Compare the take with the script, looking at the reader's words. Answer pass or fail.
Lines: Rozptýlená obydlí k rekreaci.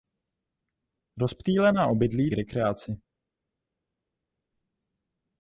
pass